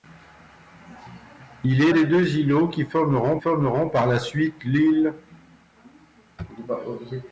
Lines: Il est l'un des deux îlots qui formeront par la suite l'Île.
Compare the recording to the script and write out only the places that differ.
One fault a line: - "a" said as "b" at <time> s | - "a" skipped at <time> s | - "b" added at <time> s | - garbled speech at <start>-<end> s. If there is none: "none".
- "l'un" skipped at 1.9 s
- "formeront" added at 3.4 s